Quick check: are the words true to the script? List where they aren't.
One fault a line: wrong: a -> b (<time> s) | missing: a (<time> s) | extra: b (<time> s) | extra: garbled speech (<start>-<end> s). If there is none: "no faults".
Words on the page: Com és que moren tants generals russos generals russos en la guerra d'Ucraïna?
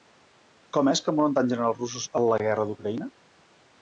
missing: generals russos (2.1 s)